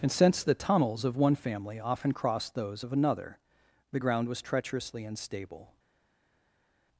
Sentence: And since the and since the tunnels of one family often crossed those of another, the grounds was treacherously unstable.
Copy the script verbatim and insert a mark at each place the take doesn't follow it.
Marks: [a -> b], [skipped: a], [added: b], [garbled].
And since the [skipped: and since the] tunnels of one family often crossed those of another, the [grounds -> ground] was treacherously unstable.